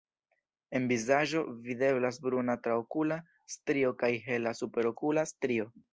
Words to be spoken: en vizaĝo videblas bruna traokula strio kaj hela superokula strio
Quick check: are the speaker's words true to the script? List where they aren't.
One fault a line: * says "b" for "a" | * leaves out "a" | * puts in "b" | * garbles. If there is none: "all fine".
all fine